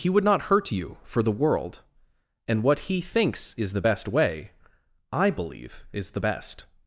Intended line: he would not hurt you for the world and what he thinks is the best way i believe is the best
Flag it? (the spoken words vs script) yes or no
no